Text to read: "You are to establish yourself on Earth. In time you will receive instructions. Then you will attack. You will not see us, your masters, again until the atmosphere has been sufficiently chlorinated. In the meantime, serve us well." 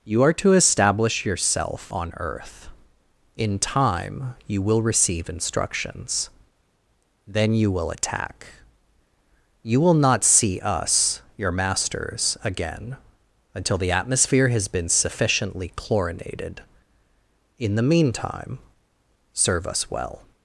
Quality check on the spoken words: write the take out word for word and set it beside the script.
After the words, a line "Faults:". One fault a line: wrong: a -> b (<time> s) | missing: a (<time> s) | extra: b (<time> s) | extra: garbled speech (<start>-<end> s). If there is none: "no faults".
"You are to establish yourself on Earth. In time you will receive instructions. Then you will attack. You will not see us, your masters, again until the atmosphere has been sufficiently chlorinated. In the meantime, serve us well."
Faults:
no faults